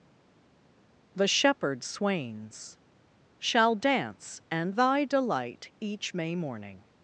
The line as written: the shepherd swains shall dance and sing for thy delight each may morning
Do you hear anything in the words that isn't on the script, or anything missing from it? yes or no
yes